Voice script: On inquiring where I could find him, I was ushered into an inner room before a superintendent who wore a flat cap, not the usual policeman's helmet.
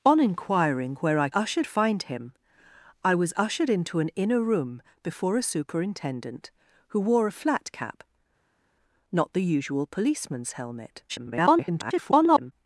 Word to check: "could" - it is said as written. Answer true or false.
false